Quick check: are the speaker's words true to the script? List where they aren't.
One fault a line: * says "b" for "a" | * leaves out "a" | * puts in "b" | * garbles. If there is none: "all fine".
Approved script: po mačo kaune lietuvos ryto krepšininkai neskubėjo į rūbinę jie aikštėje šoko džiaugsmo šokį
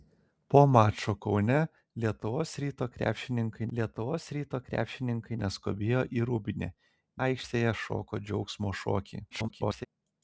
* puts in "lietuvos ryto krepšininkai"
* leaves out "jie"
* garbles